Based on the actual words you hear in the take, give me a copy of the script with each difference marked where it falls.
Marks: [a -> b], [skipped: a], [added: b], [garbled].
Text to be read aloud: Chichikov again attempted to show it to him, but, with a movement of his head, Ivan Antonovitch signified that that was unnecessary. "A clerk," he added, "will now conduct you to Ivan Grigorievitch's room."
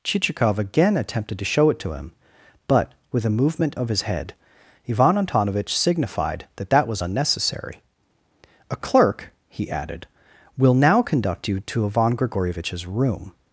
Chichikov again attempted to show it to him, but, with a movement of his head, Ivan Antonovitch signified that that was unnecessary. "A clerk," he added, "will now conduct you to Ivan Grigorievitch's room."